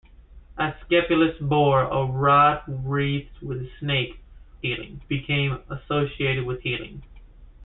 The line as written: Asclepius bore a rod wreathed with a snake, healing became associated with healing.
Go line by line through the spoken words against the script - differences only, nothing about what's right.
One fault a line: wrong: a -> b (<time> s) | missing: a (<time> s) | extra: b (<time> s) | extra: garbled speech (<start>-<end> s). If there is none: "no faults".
no faults